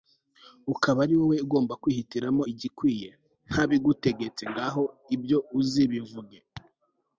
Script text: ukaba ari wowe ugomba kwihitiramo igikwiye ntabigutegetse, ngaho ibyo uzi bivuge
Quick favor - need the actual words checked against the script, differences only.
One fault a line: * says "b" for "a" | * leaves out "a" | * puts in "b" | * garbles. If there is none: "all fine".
all fine